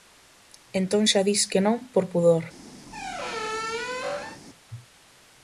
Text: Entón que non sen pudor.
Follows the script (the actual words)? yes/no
no